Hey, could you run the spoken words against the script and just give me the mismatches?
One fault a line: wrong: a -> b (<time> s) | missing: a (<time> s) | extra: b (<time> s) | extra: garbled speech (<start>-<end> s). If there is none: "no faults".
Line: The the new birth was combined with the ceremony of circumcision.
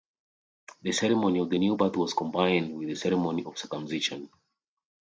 extra: ceremony of (0.9 s)